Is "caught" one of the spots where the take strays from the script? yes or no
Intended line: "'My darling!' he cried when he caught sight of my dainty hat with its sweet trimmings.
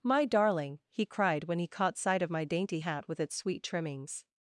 no